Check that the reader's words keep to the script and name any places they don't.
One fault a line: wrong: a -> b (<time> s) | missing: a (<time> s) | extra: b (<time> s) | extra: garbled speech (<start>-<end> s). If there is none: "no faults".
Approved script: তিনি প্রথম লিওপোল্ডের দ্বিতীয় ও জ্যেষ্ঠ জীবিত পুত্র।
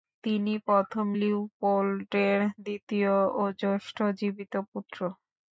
no faults